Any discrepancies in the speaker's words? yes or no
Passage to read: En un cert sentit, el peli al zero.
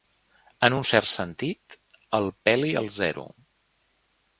no